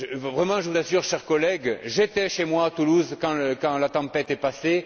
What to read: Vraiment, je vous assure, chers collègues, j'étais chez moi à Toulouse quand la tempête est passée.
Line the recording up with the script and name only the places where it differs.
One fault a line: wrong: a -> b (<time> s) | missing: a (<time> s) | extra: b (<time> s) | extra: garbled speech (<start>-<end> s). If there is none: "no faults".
no faults